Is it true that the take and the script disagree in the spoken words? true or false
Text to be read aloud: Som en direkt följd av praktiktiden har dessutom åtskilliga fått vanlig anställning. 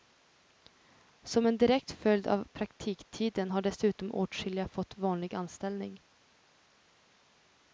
false